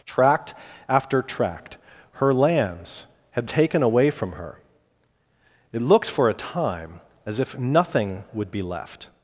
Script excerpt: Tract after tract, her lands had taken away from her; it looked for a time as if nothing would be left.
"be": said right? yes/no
yes